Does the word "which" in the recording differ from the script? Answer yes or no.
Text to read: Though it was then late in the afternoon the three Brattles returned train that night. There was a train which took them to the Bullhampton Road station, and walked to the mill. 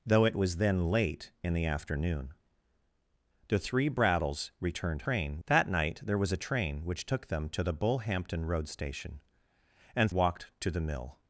no